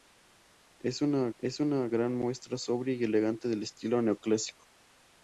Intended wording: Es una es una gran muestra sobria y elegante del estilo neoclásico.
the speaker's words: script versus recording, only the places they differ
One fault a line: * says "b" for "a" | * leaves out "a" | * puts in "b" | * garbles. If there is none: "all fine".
all fine